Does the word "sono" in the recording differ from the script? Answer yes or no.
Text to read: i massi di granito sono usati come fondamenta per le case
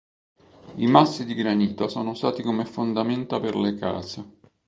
no